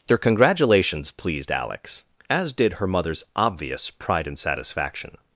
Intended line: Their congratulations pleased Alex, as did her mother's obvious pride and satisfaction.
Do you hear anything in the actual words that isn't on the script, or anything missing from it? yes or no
no